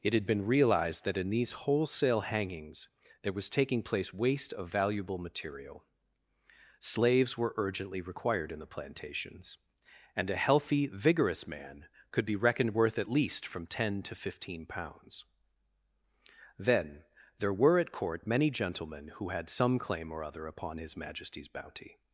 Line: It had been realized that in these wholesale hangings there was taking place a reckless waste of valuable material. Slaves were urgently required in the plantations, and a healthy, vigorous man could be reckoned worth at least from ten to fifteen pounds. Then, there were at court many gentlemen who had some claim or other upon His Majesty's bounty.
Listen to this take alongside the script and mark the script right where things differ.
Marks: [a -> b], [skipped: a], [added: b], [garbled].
It had been realized that in these wholesale hangings there was taking place [skipped: a reckless] waste of valuable material. Slaves were urgently required in the plantations, and a healthy, vigorous man could be reckoned worth at least from ten to fifteen pounds. Then, there were at court many gentlemen who had some claim or other upon His Majesty's bounty.